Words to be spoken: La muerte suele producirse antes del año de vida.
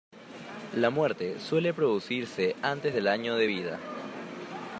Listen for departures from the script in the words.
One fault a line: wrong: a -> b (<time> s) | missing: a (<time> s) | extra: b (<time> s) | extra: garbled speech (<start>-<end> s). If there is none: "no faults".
no faults